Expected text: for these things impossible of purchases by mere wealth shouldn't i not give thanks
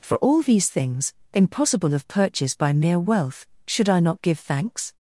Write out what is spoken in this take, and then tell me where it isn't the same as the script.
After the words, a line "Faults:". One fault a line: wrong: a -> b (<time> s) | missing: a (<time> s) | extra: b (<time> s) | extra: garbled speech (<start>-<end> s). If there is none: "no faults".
for all these things impossible of purchase by mere wealth should i not give thanks
Faults:
extra: all (0.2 s)
wrong: purchases -> purchase (2.1 s)
wrong: shouldn't -> should (3.7 s)